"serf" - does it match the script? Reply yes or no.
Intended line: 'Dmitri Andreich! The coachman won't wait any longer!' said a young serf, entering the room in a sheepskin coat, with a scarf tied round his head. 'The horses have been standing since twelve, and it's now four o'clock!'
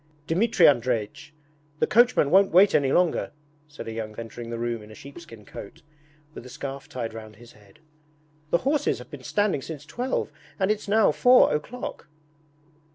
no